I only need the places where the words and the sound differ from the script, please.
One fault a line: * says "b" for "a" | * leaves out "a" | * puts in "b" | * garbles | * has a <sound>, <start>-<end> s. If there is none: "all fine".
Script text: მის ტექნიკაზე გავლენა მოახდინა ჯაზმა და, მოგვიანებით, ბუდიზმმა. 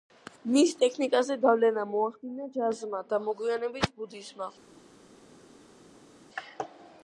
all fine